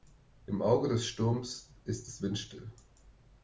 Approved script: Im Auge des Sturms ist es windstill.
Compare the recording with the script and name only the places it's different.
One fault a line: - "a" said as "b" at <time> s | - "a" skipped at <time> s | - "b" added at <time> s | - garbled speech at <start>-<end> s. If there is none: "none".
none